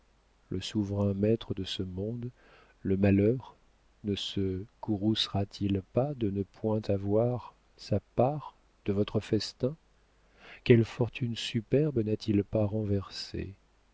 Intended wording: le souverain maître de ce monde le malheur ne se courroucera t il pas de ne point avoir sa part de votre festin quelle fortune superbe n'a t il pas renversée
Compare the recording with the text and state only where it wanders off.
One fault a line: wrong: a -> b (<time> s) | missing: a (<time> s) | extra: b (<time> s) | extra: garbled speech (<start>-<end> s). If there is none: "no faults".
no faults